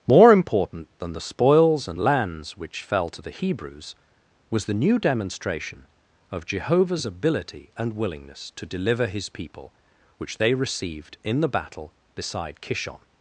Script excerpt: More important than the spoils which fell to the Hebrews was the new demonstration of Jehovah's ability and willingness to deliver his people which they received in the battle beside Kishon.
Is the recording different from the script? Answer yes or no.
yes